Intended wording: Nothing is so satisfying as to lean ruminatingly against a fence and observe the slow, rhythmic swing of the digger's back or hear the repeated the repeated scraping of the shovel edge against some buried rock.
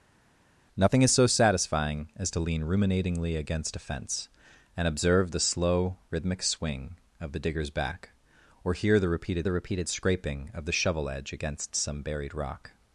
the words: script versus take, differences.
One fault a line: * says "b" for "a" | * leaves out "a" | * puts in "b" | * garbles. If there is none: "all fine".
all fine